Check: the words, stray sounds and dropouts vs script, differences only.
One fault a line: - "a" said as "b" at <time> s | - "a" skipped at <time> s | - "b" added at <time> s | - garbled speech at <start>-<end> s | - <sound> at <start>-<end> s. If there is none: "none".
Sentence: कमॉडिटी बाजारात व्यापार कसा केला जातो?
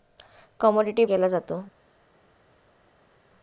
- "बाजारात व्यापार कसा" skipped at 1.1 s